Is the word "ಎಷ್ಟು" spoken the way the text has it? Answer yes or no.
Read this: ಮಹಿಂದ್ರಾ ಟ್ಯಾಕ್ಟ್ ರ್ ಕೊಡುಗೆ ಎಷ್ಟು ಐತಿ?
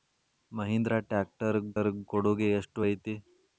yes